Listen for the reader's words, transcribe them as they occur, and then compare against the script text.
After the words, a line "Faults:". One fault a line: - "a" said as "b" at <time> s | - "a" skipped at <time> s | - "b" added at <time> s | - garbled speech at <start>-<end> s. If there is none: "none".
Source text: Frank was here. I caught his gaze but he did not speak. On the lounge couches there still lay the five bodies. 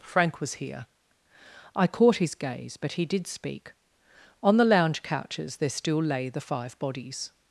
Frank was here. I caught his gaze but he did speak. On the lounge couches there still lay the five bodies.
Faults:
- "not" skipped at 3.3 s